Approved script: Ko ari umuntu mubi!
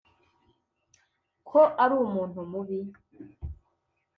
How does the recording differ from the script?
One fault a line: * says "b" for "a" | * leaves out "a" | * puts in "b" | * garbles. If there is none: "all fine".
all fine